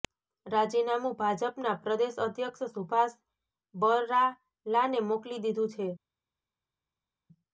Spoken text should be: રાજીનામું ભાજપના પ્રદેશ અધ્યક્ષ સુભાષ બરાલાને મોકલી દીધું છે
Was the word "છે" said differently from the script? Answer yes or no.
no